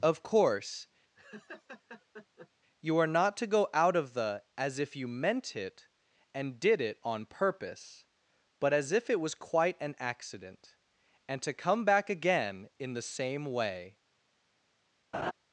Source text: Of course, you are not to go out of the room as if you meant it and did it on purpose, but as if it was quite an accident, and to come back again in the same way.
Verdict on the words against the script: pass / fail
fail